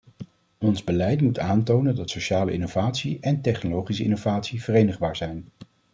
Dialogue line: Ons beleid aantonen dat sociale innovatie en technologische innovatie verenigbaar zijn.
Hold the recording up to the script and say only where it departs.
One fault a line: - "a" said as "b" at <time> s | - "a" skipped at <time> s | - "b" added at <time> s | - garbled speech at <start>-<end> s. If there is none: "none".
- "moet" added at 1.2 s